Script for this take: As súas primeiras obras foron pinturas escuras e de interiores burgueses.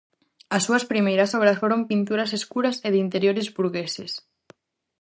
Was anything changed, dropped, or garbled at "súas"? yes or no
no